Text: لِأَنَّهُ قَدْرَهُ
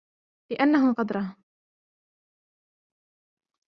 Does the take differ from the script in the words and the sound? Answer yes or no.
no